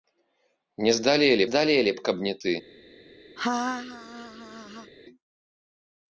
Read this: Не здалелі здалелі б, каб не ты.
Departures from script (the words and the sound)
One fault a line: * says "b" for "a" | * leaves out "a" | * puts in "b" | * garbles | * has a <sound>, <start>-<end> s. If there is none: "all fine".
* has a laugh, 3.4-4.9 s